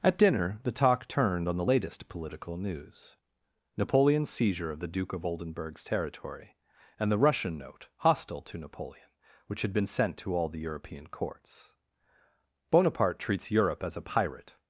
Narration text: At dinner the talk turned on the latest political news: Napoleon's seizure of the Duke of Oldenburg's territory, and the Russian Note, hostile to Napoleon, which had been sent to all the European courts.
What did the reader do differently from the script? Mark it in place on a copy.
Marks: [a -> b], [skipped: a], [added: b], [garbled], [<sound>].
At dinner the talk turned on the latest political news: Napoleon's seizure of the Duke of Oldenburg's territory, and the Russian Note, hostile to Napoleon, which had been sent to all the European courts. [added: Bonaparte treats Europe as a pirate]